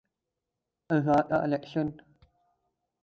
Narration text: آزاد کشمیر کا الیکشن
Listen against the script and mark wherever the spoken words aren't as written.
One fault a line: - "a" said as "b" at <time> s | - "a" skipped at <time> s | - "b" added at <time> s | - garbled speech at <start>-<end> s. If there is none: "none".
- "کشمیر" skipped at 1.2 s